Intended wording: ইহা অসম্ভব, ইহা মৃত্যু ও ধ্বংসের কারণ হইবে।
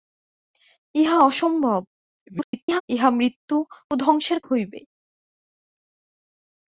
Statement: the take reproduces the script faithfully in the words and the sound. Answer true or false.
false